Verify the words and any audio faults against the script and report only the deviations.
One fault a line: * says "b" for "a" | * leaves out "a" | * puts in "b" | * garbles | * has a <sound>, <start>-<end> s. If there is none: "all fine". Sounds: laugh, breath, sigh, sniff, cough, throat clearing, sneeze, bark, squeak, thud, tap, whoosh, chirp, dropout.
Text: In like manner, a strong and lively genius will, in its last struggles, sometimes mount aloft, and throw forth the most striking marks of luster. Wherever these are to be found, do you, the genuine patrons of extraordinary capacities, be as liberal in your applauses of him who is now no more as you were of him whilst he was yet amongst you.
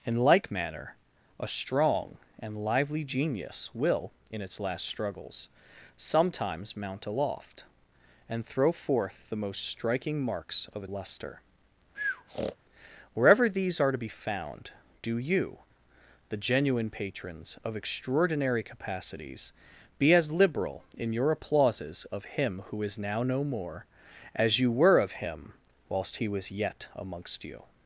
* has a breath, 11.9-12.6 s